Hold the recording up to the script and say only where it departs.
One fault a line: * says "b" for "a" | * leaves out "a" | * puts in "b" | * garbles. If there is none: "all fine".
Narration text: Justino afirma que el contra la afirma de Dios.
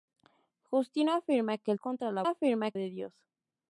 all fine